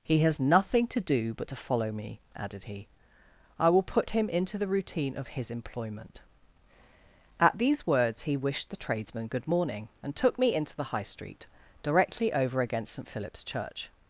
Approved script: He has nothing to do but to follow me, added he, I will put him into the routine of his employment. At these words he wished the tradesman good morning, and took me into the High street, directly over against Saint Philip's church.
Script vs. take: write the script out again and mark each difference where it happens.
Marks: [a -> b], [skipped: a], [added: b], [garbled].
He has nothing to do but to follow me, added he, I will put him into the routine of his employment. At these words he wished the tradesman good morning, and took me into the High street, directly over against Saint Philip's church.